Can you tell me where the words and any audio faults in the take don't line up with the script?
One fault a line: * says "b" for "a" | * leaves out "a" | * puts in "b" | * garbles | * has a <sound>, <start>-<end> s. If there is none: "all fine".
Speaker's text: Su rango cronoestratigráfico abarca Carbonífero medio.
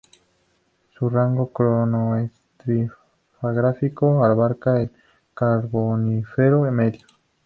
* puts in "el"